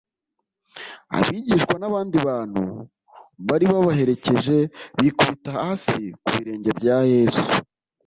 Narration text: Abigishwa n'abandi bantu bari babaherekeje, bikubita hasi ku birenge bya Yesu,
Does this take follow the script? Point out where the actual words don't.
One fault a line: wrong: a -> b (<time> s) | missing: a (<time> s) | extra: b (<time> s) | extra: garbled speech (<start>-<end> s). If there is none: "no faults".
no faults